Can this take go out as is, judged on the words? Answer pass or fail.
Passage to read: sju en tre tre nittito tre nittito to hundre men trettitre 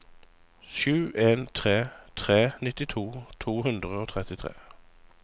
fail